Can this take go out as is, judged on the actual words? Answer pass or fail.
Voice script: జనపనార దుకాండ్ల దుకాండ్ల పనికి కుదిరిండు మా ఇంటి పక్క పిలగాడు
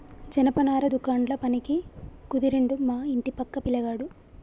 fail